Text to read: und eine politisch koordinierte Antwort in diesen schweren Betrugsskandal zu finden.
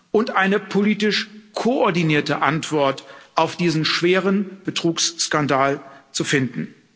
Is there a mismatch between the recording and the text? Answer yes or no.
yes